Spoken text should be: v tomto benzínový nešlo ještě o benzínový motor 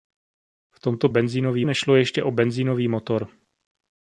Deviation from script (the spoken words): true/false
false